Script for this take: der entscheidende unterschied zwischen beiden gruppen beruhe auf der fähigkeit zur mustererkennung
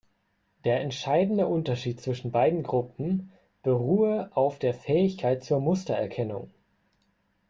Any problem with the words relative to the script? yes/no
no